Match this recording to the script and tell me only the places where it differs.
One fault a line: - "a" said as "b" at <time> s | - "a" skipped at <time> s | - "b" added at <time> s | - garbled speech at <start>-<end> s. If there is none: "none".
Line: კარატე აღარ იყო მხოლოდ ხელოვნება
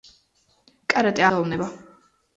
- "აღარ იყო მხოლოდ" skipped at 1.3 s